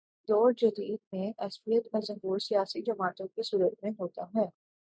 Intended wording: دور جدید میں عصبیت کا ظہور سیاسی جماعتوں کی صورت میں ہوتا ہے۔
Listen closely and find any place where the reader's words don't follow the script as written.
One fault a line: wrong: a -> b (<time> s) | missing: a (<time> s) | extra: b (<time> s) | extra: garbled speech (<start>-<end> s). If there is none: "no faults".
no faults